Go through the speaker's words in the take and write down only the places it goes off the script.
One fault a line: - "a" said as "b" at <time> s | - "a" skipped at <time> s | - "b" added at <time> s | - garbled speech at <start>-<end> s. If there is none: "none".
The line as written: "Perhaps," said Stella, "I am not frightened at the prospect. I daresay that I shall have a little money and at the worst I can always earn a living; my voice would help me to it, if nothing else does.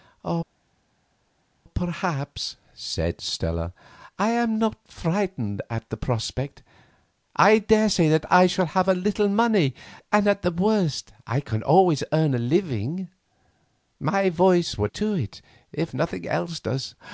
- "help me" skipped at 14.9 s